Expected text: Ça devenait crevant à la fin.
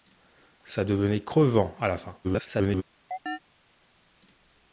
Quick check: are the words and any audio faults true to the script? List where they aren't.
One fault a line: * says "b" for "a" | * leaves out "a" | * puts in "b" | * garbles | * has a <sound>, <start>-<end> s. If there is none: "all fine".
* garbles
* has a chirp, 3.1-3.4 s